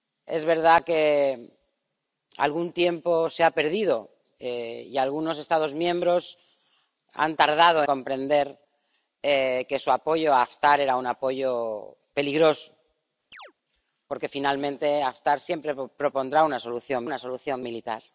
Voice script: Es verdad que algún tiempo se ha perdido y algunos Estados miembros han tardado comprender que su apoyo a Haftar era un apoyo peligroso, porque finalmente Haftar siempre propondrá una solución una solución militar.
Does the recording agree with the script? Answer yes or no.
yes